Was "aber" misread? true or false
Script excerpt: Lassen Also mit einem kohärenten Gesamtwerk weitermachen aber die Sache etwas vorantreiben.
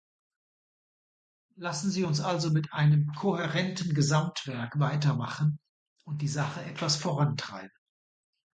true